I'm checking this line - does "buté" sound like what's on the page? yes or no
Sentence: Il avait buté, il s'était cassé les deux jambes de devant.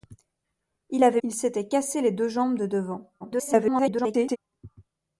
no